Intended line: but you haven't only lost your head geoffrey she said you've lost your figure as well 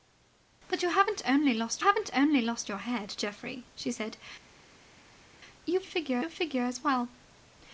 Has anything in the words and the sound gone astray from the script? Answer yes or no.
yes